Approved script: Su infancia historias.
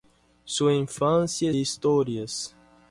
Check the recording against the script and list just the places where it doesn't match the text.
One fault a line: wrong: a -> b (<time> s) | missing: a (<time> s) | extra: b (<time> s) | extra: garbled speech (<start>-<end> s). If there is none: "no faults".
no faults